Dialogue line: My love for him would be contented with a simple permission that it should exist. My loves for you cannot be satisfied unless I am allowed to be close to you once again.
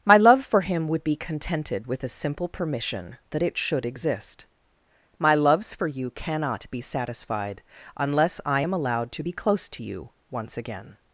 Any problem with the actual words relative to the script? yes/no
no